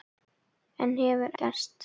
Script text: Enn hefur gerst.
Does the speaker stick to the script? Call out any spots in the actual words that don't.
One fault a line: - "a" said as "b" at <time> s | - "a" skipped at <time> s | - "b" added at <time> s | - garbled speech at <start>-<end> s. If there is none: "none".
none